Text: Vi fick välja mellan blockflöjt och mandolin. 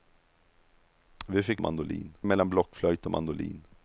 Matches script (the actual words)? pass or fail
fail